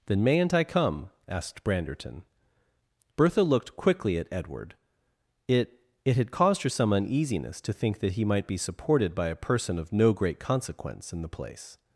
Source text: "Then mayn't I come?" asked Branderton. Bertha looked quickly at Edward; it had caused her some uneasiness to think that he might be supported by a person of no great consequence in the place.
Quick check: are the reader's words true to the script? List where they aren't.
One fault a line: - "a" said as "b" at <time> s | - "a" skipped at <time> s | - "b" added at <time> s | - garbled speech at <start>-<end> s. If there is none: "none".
- "it" added at 6.0 s